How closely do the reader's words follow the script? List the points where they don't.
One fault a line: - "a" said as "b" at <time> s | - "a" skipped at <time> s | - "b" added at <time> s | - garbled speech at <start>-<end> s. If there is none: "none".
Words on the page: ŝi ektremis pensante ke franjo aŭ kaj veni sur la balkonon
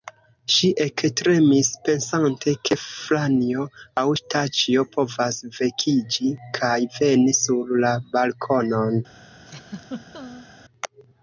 - "staĉjo povas vekiĝi" added at 4.2 s